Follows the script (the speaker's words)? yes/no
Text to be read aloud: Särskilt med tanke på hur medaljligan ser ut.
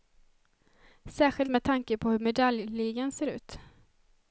yes